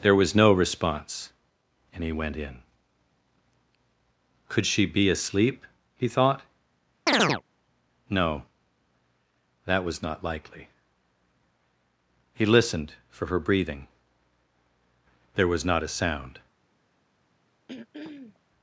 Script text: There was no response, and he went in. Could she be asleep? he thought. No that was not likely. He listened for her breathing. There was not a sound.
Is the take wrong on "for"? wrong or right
right